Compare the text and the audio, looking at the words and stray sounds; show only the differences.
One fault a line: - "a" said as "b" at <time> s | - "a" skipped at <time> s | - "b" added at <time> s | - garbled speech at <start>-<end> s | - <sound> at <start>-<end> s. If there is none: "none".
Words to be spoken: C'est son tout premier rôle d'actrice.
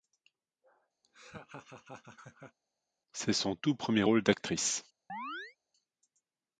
- laugh at 1.0-2.6 s
- chirp at 5.1-5.6 s